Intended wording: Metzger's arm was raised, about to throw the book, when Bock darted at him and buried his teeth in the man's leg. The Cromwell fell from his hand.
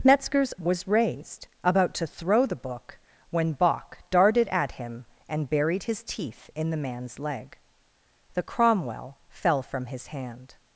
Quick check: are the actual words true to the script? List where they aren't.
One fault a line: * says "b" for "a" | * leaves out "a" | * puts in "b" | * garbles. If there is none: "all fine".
* leaves out "arm"